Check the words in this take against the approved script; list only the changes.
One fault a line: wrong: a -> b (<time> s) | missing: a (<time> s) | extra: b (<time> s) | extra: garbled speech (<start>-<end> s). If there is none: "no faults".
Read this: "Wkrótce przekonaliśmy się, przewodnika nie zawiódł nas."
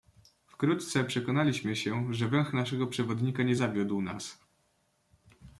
extra: że węch naszego (2.1 s)